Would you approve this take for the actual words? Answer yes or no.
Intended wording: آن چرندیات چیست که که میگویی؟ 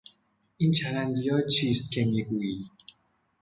no